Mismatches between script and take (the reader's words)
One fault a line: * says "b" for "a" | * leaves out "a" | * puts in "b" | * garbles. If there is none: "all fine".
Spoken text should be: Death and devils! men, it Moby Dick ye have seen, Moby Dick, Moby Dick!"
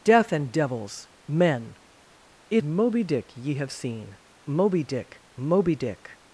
all fine